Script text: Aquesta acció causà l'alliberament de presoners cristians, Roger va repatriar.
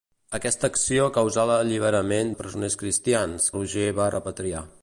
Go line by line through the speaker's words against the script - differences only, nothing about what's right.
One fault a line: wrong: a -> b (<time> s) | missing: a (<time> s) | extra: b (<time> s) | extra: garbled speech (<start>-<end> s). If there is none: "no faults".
no faults